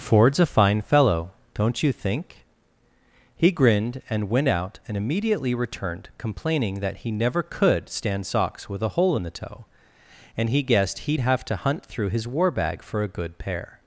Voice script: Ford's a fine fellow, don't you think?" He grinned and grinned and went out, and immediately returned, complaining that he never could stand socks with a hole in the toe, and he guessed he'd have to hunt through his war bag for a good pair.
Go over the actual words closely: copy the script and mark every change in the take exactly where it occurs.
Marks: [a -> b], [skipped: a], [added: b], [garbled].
Ford's a fine fellow, don't you think?" He grinned and [skipped: grinned and] went out, and immediately returned, complaining that he never could stand socks with a hole in the toe, and he guessed he'd have to hunt through his war bag for a good pair.